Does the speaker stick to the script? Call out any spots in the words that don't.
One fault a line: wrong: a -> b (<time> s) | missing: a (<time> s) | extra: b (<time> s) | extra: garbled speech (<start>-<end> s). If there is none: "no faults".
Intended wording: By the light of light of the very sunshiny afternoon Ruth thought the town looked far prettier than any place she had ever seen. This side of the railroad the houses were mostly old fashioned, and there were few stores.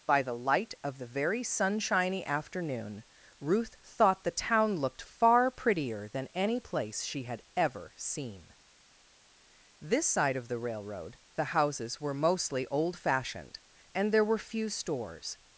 missing: light of (1.0 s)